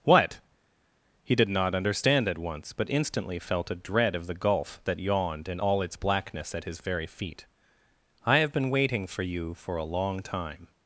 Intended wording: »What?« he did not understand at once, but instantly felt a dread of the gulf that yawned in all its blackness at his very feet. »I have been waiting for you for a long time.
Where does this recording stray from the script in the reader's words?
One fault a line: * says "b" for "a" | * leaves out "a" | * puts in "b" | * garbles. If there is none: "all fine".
all fine